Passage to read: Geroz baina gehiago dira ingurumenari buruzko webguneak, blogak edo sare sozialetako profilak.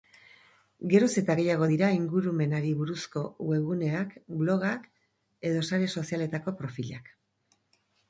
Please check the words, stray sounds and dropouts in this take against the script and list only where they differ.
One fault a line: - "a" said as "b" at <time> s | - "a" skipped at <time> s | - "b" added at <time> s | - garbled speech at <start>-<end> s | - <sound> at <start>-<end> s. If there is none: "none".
- "baina" said as "eta" at 1.2 s